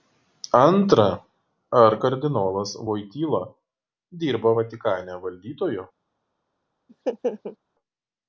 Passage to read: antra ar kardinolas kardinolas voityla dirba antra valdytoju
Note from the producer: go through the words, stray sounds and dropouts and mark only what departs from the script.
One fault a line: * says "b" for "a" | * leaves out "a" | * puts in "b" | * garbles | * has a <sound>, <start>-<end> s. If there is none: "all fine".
* leaves out "kardinolas"
* says "vatikane" for "antra"
* has a laugh, 6.9-7.6 s